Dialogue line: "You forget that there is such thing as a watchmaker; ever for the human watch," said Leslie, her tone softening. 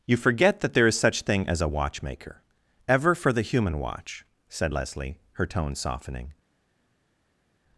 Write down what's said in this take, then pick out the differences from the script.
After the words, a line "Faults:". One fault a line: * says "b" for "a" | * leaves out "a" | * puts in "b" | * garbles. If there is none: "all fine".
"You forget that there is such thing as a watchmaker; ever for the human watch," said Leslie, her tone softening.
Faults:
all fine